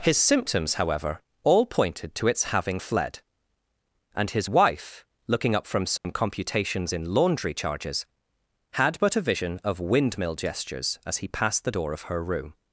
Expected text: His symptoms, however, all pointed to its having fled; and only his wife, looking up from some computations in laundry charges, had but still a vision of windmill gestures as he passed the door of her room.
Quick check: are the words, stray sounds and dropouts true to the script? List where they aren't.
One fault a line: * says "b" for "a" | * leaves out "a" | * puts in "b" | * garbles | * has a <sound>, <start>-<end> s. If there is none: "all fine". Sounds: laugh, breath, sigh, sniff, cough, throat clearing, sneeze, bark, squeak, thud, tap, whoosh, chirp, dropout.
* leaves out "only"
* has a dropout, 6.0-6.0 s
* leaves out "still"